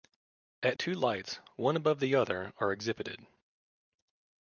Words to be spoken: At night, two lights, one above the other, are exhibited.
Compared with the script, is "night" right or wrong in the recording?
wrong